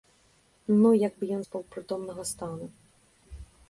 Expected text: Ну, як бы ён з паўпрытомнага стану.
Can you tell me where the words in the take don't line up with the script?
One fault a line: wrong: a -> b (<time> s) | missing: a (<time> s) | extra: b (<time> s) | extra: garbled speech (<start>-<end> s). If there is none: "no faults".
no faults